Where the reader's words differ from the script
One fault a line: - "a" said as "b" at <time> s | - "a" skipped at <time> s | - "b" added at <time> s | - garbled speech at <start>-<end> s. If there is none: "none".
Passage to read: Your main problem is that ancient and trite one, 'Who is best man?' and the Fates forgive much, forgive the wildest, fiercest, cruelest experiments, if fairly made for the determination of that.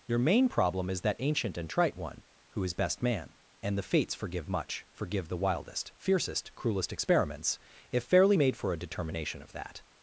- "the" said as "a" at 8.7 s